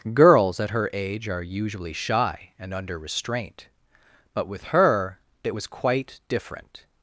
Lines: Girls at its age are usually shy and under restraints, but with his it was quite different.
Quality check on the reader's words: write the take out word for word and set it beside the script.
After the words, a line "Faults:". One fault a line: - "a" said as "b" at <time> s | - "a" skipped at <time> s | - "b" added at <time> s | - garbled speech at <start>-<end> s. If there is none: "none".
Girls at her age are usually shy and under restraint, but with her it was quite different.
Faults:
- "its" said as "her" at 0.7 s
- "restraints" said as "restraint" at 3.0 s
- "his" said as "her" at 4.7 s